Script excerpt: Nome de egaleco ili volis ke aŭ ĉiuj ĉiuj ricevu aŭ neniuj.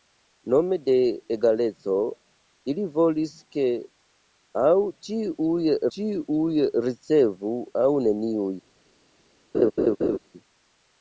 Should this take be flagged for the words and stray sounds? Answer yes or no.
yes